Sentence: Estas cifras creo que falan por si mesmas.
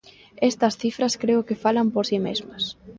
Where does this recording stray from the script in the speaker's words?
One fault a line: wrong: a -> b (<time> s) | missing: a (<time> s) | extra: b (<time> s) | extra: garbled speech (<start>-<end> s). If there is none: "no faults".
no faults